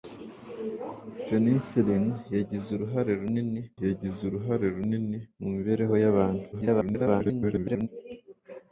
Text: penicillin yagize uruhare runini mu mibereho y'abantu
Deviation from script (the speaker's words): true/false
true